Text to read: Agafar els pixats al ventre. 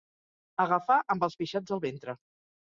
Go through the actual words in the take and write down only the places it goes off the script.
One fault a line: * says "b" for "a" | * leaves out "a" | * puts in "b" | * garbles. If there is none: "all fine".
* puts in "amb"